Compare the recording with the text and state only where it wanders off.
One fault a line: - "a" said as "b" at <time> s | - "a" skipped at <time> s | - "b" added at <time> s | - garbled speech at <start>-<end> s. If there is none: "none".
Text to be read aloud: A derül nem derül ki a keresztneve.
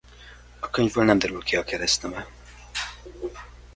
- "derül" said as "könyvből" at 0.7 s